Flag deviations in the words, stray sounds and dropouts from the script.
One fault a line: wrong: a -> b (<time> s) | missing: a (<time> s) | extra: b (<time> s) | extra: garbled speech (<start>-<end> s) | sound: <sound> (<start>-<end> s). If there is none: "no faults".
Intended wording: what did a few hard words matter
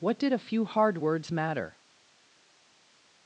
no faults